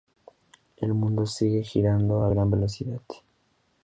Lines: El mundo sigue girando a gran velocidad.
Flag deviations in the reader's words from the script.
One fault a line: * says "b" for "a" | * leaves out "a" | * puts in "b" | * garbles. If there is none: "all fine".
all fine